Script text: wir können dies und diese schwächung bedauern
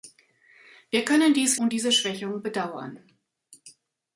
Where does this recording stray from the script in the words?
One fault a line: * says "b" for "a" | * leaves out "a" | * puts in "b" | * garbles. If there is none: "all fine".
all fine